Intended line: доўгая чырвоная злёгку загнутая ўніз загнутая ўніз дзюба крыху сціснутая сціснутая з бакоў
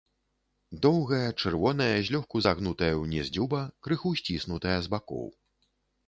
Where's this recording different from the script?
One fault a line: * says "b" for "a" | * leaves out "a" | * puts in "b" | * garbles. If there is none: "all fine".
* leaves out "загнутая ўніз"
* leaves out "сціснутая"